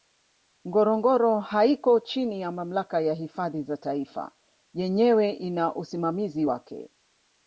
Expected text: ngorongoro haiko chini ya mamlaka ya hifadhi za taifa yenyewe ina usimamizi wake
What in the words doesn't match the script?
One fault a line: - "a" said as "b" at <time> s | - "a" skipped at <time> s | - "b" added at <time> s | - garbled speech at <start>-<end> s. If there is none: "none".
none